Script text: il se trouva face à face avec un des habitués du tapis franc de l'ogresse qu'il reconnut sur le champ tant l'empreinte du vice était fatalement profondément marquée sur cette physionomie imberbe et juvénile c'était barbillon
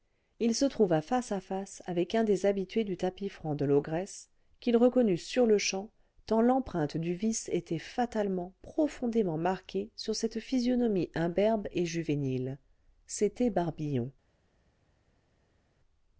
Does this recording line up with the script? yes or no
yes